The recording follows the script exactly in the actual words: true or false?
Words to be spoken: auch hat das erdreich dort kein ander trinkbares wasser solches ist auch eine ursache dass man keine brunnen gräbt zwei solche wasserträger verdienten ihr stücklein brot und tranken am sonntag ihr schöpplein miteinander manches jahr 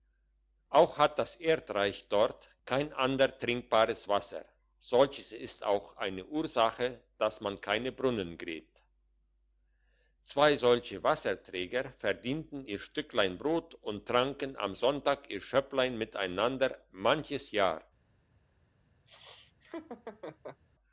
true